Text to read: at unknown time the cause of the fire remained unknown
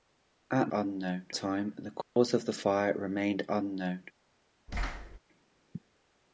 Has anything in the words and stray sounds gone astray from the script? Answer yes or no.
yes